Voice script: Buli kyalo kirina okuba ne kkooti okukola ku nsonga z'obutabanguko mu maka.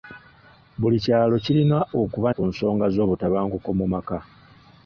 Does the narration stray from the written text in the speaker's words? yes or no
yes